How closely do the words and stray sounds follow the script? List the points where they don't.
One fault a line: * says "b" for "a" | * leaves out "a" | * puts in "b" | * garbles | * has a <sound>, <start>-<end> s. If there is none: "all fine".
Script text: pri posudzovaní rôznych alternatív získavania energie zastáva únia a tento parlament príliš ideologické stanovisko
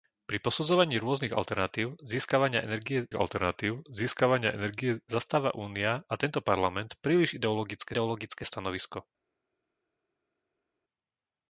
* puts in "alternatív získavania energie"
* puts in "ideologické"